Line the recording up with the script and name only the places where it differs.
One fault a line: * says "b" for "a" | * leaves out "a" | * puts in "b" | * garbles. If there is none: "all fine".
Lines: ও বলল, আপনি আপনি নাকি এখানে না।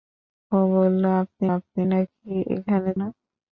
all fine